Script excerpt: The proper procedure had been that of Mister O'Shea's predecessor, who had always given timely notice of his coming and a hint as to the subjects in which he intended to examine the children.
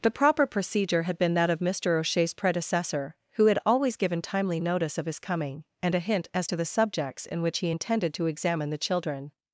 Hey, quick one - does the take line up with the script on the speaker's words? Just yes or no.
yes